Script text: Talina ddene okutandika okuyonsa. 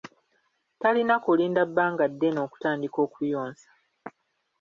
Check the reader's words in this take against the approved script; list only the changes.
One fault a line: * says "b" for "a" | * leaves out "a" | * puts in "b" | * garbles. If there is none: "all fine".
* puts in "kulinda bbanga"